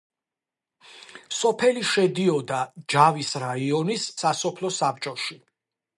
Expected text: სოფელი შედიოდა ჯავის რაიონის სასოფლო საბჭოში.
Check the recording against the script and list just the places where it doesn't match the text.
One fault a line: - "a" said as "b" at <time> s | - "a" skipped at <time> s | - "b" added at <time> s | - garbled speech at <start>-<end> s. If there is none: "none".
none